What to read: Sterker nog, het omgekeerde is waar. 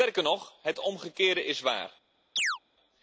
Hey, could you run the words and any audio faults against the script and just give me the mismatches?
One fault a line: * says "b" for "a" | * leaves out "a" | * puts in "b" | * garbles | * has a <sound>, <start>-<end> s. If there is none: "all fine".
* has a chirp, 2.4-2.6 s